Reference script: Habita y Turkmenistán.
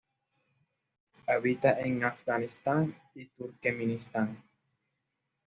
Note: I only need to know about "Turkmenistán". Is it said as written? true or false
true